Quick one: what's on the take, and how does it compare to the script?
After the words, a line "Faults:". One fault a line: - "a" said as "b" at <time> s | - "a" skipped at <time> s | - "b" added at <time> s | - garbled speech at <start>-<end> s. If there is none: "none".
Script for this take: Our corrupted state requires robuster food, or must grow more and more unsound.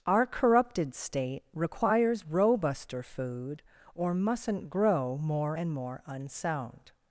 Our corrupted state requires robuster food, or mustn't grow more and more unsound.
Faults:
- "must" said as "mustn't" at 4.1 s